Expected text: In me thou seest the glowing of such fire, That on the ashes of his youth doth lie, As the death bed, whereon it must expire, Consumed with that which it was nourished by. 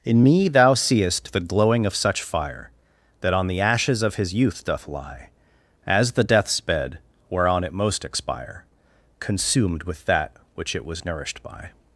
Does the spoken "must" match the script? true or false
false